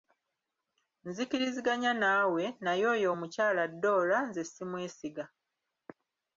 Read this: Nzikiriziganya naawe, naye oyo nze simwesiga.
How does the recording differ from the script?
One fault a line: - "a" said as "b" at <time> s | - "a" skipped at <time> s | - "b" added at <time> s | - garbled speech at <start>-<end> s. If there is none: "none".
- "omukyala Dora" added at 3.1 s